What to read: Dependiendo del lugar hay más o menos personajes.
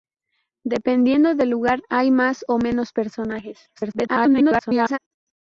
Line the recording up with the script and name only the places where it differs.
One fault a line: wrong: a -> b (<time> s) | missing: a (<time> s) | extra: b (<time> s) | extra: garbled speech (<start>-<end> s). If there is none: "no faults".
extra: garbled speech (3.7-5.0 s)